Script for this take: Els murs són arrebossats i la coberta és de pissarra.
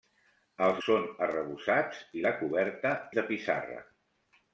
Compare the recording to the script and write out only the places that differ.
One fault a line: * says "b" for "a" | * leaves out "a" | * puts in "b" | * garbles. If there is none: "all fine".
* leaves out "murs"
* leaves out "és"